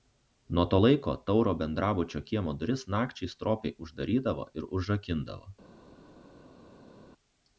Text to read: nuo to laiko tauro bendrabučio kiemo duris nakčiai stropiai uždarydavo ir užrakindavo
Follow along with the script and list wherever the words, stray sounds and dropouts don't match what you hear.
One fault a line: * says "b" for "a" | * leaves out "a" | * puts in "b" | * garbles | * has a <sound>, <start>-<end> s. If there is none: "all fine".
all fine